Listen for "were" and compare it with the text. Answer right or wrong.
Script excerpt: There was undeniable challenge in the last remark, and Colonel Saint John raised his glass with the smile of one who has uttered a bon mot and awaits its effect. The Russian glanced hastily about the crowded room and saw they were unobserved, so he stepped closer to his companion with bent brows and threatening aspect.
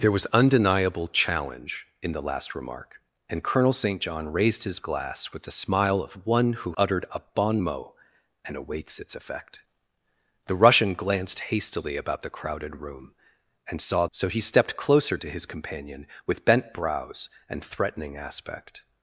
wrong